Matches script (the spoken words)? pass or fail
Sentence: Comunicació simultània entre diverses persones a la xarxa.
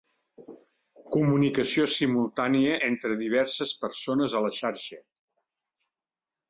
pass